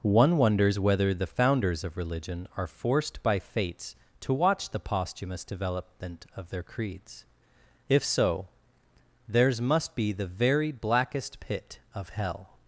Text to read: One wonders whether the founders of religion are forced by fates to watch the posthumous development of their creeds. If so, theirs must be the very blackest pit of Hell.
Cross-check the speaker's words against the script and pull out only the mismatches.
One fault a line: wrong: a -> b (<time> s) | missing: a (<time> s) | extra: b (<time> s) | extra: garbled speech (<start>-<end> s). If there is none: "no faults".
no faults